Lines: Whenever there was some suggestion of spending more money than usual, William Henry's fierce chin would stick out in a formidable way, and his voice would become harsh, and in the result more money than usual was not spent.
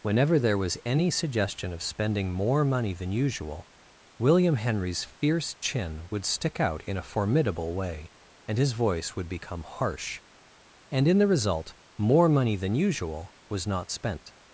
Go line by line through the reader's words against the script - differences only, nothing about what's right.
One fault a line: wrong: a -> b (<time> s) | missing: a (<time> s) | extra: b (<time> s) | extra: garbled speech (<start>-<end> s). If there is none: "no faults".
wrong: some -> any (0.8 s)